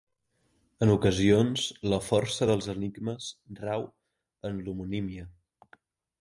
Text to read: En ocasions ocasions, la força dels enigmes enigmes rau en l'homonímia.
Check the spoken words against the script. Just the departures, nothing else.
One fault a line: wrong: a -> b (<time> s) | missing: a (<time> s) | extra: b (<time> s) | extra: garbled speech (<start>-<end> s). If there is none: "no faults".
missing: ocasions (1.6 s)
missing: enigmes (3.3 s)